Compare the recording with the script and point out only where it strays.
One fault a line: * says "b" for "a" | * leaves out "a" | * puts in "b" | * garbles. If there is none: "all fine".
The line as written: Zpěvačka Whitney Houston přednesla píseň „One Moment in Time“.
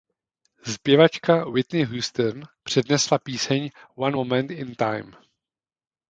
all fine